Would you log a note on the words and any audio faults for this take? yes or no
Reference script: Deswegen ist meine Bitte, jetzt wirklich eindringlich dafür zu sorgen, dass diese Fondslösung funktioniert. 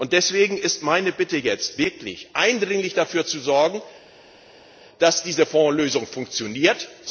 no